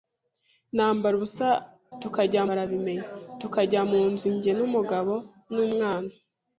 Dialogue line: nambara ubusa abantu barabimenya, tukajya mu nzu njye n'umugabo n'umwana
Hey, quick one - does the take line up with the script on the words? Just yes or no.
no